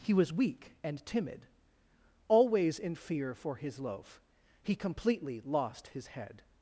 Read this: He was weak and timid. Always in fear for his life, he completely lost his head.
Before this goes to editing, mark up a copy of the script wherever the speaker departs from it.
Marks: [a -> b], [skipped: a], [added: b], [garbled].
He was weak and timid. Always in fear for his [life, -> loaf] he completely lost his head.